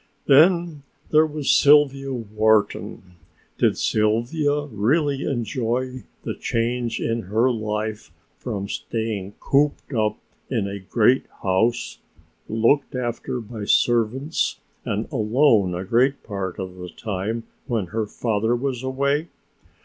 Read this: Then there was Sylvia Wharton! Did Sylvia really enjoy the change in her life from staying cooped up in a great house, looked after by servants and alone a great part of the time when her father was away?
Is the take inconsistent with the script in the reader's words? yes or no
no